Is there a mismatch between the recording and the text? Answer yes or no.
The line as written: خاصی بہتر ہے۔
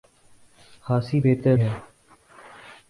no